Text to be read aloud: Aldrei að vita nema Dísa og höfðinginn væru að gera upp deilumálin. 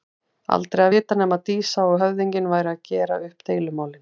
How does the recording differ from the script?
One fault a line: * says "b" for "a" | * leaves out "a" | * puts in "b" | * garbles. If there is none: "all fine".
all fine